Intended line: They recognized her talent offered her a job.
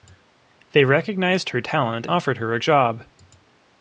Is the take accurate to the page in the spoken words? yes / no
yes